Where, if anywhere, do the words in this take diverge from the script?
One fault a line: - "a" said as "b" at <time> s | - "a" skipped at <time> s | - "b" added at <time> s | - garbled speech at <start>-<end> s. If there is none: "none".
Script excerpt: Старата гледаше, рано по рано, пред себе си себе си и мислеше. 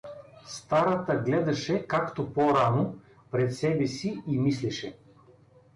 - "рано" said as "както" at 1.9 s
- "себе си" skipped at 4.2 s